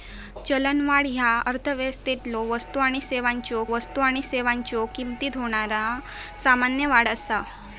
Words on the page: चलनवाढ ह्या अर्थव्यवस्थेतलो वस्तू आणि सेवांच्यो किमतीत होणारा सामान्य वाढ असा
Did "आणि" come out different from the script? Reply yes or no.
no